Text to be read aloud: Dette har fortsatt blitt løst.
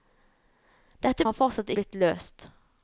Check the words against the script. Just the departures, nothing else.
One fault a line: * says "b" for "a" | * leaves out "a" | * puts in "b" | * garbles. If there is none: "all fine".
all fine